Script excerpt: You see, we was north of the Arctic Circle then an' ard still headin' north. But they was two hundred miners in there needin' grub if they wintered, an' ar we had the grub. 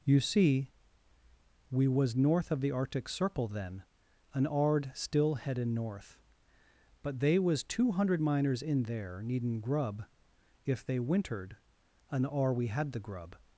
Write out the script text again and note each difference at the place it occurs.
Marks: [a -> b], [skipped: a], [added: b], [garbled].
You see, we was north of the Arctic Circle then an' ard still headin' north. But they was two hundred miners in there needin' grub if they wintered, an' ar we had the grub.